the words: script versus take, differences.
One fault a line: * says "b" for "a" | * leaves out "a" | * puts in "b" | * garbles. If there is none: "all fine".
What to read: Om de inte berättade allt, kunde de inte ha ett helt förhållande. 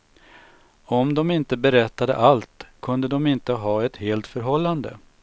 all fine